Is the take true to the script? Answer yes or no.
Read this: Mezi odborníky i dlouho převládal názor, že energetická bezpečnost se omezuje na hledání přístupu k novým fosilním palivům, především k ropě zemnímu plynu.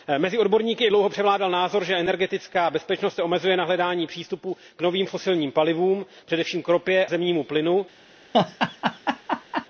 yes